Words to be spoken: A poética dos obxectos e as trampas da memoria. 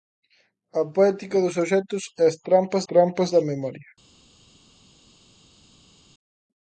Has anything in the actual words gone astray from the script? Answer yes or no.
yes